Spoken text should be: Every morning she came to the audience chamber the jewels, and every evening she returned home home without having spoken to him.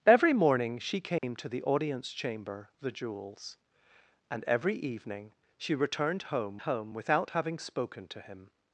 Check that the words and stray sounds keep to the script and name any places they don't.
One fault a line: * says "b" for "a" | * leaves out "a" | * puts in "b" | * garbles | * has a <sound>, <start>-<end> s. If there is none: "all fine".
* has a dropout, 1.2-1.2 s